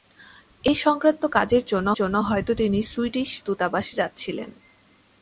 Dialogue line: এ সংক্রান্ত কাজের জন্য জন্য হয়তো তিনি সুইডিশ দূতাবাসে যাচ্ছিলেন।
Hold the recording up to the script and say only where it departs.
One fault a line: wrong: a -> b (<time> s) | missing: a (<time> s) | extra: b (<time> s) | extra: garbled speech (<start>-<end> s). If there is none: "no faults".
no faults